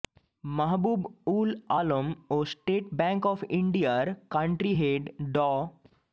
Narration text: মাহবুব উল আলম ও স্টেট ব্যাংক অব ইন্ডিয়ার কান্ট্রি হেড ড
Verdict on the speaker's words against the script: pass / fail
pass